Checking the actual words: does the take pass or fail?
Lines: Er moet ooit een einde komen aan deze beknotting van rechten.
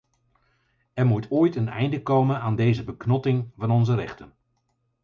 fail